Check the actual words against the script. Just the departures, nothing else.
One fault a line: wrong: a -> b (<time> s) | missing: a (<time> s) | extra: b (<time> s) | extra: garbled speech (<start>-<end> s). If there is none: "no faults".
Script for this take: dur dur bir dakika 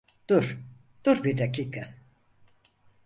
no faults